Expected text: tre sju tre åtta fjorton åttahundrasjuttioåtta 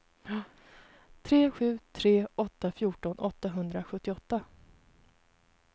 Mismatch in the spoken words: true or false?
false